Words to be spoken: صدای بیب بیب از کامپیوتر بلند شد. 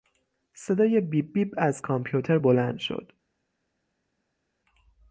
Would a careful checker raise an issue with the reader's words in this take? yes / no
no